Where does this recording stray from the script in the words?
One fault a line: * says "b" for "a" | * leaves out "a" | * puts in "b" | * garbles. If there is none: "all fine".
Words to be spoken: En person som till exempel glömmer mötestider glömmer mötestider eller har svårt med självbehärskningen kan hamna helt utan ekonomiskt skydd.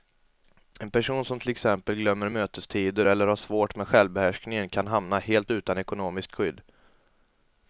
* leaves out "glömmer mötestider"